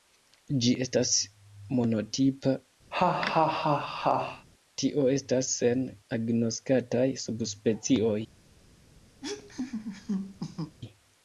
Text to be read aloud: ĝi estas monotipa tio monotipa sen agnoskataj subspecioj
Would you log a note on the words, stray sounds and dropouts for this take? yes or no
yes